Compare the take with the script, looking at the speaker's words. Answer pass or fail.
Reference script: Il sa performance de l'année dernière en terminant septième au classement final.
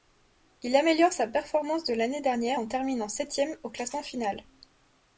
fail